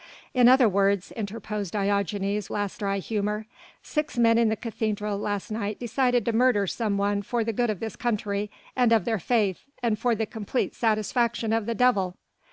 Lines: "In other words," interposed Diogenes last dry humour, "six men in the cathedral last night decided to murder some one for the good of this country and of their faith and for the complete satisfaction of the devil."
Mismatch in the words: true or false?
false